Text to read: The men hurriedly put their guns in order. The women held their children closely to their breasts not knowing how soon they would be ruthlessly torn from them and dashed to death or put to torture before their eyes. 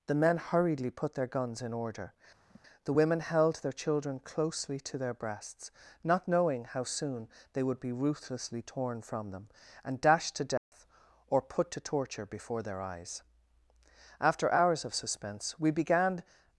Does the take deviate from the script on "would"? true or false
false